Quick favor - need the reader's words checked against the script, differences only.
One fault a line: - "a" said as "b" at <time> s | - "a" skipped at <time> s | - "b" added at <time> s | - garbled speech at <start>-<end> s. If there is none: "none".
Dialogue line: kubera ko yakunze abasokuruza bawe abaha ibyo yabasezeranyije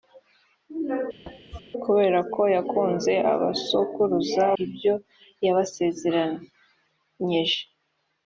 - "bawe abaha" skipped at 4.4 s